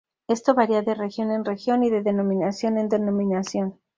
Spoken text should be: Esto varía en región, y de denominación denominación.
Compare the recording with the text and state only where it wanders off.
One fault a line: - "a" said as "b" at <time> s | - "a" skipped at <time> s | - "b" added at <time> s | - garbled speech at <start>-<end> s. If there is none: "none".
- "de región" added at 0.8 s
- "en" added at 2.8 s